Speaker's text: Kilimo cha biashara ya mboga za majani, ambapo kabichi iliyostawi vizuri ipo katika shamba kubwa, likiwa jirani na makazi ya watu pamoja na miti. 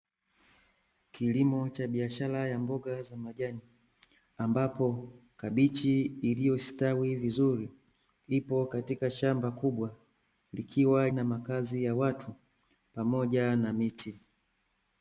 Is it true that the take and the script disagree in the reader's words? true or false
true